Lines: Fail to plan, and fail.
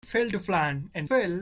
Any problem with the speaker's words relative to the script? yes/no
no